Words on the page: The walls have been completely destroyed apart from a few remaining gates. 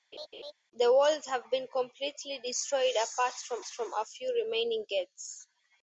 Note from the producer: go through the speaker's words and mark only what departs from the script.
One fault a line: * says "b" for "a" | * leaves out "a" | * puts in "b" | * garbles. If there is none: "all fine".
* puts in "from"